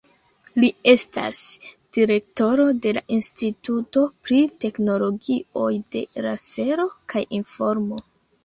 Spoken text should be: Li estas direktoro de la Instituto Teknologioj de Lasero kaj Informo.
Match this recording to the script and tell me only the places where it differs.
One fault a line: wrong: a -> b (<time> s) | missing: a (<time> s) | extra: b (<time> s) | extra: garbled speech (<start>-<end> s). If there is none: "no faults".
extra: pri (4.3 s)